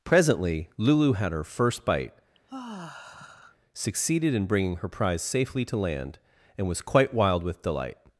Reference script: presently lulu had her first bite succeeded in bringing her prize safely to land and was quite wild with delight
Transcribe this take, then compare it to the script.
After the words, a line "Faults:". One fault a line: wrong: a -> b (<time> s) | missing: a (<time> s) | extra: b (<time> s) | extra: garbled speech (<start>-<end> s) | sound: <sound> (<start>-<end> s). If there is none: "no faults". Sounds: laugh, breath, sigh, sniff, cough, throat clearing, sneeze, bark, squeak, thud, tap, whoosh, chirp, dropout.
presently lulu had her first bite succeeded in bringing her prize safely to land and was quite wild with delight
Faults:
sound: sigh (2.3-3.6 s)